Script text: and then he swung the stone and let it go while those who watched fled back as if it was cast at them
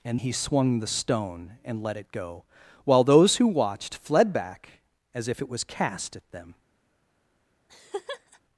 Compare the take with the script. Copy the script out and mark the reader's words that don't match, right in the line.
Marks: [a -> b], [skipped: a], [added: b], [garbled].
and [skipped: then] he swung the stone and let it go while those who watched fled back as if it was cast at them